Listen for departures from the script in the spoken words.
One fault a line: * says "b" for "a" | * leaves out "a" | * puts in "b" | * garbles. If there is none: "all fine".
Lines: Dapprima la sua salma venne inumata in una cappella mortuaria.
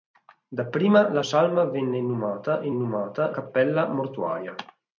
* leaves out "sua"
* says "inumata" for "una"